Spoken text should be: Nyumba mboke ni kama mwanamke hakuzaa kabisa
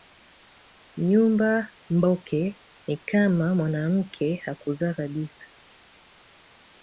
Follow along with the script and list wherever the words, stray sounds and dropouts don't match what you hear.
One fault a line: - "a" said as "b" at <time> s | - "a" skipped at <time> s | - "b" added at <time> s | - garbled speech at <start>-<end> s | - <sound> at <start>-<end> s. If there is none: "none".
none